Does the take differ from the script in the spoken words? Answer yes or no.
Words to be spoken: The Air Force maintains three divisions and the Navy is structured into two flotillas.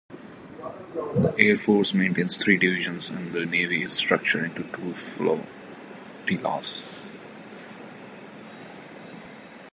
no